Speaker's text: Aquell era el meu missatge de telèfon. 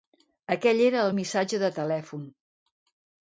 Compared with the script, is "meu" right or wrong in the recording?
wrong